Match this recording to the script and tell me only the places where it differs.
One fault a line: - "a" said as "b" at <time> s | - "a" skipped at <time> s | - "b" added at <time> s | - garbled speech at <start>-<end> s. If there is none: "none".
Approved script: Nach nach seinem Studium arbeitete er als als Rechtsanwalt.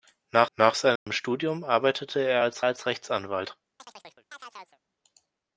none